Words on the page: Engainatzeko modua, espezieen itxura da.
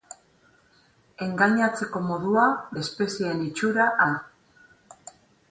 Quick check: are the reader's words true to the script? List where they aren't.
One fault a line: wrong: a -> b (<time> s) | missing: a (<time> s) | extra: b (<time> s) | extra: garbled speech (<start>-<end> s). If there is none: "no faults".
no faults